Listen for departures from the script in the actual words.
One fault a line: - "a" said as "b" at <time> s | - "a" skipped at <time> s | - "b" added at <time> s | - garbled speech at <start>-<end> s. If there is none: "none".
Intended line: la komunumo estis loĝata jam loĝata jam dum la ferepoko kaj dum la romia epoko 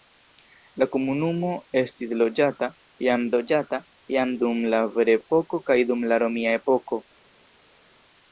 none